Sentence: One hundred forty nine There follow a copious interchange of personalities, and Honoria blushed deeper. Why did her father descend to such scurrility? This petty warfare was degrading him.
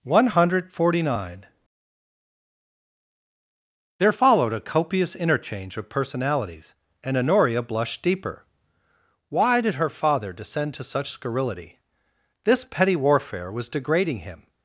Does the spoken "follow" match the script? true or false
false